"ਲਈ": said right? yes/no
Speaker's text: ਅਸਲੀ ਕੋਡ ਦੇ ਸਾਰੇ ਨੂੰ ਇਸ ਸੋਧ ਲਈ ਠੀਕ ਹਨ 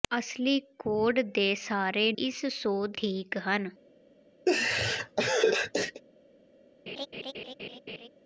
no